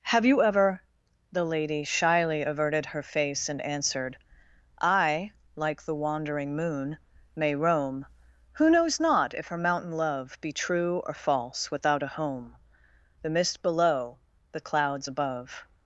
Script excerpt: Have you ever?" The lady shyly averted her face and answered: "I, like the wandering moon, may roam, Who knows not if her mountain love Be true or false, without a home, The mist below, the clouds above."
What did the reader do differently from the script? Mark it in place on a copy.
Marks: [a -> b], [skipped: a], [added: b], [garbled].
Have you ever?" The lady shyly averted her face and answered: "I, like the wandering moon, may roam, Who knows not if her mountain love Be true or false, without a home, The mist below, the clouds above."